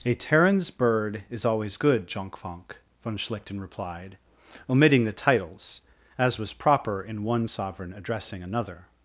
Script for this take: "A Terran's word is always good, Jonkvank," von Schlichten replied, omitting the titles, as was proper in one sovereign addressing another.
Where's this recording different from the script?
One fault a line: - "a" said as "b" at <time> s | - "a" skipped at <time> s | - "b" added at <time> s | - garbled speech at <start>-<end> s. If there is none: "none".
- "word" said as "bird" at 0.7 s